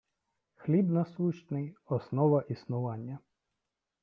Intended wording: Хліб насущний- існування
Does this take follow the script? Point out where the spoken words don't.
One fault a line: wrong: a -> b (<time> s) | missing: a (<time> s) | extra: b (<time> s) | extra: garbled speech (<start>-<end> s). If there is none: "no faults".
extra: основа (1.9 s)